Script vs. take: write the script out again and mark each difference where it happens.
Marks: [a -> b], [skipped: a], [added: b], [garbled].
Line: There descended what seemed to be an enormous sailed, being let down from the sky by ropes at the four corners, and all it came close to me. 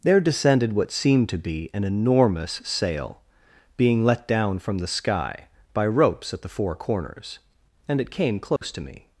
There descended what seemed to be an enormous [sailed, -> sail] being let down from the sky by ropes at the four corners, and [skipped: all] it came close to me.